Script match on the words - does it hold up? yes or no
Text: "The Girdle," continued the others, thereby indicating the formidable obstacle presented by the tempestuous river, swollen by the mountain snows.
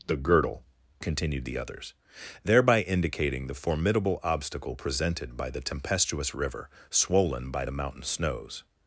yes